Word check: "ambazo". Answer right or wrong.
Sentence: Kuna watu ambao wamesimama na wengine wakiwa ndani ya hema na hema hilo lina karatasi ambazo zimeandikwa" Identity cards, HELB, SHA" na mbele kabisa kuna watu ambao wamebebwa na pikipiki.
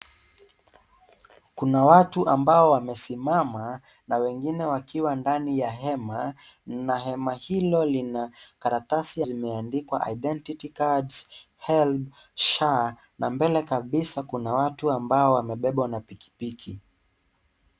wrong